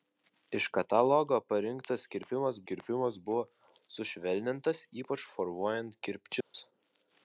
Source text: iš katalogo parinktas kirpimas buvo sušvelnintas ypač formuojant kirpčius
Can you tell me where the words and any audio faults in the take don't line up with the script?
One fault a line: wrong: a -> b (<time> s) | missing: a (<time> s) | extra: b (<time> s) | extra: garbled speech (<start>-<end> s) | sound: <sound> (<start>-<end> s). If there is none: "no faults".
extra: kirpimas (2.7 s)
sound: dropout (6.4-6.5 s)